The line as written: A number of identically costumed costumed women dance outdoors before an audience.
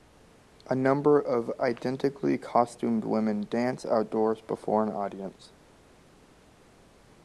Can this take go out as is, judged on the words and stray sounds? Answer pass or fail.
fail